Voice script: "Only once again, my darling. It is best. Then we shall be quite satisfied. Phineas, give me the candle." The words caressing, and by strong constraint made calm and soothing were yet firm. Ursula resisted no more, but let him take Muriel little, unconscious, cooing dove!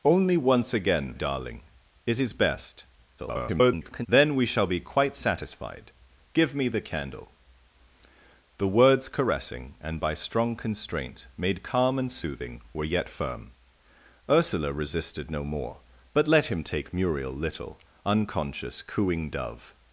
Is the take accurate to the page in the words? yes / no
no